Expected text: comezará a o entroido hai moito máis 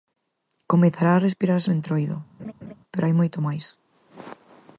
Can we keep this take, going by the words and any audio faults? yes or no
no